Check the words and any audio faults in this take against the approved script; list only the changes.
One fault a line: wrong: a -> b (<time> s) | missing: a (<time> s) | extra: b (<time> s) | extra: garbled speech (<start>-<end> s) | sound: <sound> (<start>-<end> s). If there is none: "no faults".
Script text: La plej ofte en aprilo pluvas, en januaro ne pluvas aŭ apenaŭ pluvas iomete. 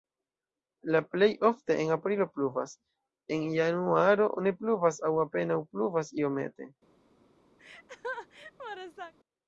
sound: laugh (7.6-9.1 s)